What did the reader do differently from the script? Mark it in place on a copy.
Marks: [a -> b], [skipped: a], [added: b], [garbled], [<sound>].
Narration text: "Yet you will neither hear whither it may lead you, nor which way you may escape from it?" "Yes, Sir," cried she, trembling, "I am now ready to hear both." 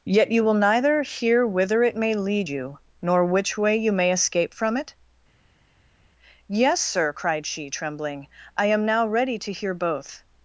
"Yet you will neither hear whither it may lead you, nor which way you may escape from it?" "Yes, Sir," cried she, trembling, "I am now ready to hear both."